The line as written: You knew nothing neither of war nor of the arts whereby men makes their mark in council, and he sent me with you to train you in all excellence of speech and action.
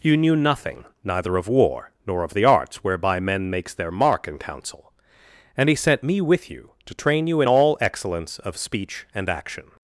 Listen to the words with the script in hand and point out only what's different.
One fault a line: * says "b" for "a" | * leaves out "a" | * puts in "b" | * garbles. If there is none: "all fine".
all fine